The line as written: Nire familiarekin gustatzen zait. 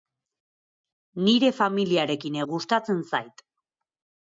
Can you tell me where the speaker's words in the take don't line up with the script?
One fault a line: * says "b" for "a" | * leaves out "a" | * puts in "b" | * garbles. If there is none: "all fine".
all fine